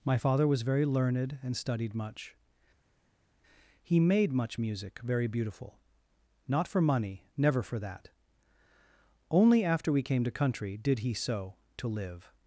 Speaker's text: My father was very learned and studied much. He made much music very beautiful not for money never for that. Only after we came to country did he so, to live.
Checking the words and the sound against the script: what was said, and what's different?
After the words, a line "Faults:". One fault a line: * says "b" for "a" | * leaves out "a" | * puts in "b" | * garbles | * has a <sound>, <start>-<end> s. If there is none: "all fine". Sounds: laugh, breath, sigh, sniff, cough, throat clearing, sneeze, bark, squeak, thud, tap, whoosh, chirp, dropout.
My father was very learned and studied much. He made much music very beautiful not for money never for that. Only after we came to country did he so, to live.
Faults:
all fine